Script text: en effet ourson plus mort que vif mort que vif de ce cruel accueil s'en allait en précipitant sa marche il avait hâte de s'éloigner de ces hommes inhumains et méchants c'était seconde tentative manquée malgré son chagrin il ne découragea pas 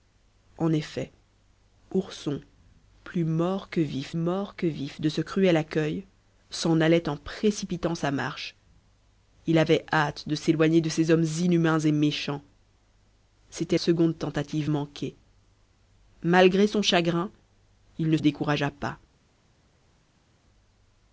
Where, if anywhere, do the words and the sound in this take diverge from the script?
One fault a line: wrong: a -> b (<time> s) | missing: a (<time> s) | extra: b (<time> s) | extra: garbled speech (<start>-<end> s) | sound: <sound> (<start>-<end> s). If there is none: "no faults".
no faults